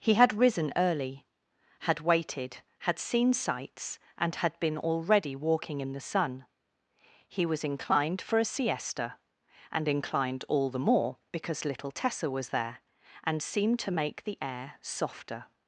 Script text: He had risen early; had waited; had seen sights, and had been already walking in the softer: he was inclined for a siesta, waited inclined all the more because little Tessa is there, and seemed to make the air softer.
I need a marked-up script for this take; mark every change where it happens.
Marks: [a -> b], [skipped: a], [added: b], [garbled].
He had risen early; had waited; had seen sights, and had been already walking in the [softer: -> sun] he was inclined for a siesta, [waited -> and] inclined all the more because little Tessa [is -> was] there, and seemed to make the air softer.